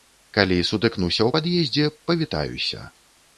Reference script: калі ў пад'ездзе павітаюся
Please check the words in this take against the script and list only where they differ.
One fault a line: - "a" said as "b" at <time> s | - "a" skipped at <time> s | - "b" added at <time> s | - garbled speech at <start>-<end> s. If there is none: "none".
- "сутыкнуся" added at 0.7 s